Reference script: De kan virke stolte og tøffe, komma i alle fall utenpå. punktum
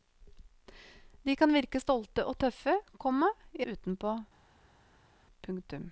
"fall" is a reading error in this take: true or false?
true